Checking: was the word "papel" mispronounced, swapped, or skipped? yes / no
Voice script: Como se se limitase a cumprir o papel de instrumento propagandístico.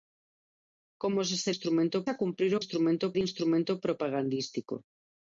yes